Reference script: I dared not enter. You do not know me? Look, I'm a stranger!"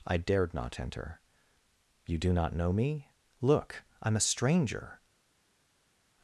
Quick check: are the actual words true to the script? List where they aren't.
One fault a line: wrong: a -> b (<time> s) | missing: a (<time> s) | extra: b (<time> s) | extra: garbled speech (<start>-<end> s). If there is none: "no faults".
no faults